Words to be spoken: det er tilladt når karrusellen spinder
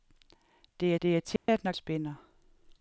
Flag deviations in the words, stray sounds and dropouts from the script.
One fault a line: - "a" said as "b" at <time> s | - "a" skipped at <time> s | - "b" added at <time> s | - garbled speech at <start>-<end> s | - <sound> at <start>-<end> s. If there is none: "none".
- "det" added at 1.0 s
- dropout at 1.4-1.5 s
- "karrusellen" skipped at 1.7 s